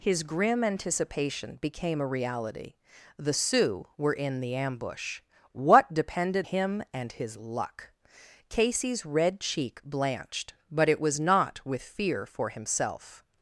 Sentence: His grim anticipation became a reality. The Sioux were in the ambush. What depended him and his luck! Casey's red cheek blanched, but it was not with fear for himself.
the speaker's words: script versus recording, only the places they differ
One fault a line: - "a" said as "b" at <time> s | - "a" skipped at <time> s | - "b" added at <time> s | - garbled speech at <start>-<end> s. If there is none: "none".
none